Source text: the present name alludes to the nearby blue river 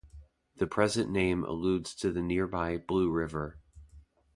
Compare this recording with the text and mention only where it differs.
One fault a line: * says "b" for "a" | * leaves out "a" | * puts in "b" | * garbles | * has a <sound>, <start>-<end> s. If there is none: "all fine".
all fine